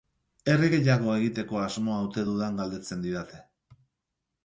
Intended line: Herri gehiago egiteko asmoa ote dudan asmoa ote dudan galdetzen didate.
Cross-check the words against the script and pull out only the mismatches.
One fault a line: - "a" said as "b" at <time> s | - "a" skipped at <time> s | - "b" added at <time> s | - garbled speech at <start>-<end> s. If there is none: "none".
- "asmoa ote dudan" skipped at 2.6 s